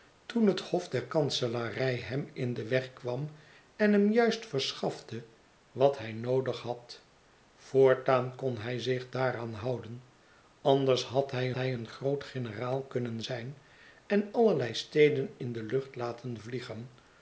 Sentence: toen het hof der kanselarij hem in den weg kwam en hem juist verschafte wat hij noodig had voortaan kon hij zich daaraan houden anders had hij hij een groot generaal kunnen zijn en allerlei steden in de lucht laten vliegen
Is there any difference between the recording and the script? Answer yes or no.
no